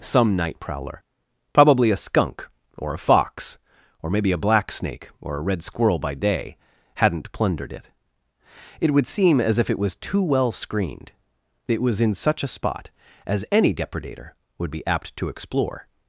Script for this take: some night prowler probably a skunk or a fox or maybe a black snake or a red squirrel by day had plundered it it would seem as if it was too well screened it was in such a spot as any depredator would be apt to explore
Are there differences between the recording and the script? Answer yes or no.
yes